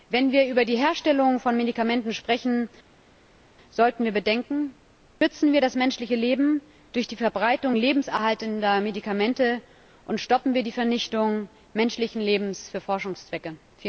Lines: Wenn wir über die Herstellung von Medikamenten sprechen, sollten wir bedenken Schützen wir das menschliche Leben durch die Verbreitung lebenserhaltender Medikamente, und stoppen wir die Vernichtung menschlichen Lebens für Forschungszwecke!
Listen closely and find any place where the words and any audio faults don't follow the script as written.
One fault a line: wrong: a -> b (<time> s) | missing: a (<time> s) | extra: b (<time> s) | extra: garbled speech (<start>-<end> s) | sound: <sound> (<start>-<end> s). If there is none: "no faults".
no faults